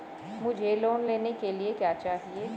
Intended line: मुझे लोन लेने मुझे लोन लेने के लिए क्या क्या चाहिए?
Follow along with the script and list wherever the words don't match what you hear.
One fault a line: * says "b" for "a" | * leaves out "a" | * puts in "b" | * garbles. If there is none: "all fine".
* leaves out "मुझे लोन लेने"
* leaves out "क्या"